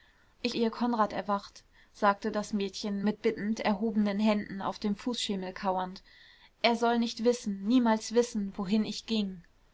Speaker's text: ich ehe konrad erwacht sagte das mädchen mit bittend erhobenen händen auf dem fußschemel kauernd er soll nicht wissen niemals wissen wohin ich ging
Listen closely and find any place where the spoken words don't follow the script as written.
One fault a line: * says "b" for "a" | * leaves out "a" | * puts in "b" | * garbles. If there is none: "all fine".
all fine